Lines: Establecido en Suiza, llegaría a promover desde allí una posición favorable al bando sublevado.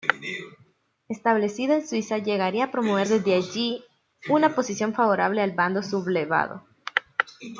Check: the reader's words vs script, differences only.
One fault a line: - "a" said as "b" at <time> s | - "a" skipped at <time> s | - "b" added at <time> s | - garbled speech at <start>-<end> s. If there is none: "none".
none